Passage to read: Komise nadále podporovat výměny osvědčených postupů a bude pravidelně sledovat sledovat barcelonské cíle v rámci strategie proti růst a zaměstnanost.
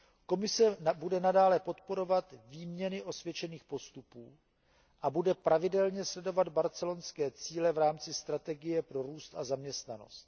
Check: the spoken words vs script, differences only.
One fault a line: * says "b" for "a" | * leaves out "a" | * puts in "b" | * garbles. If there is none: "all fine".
* puts in "bude"
* leaves out "sledovat"
* says "pro" for "proti"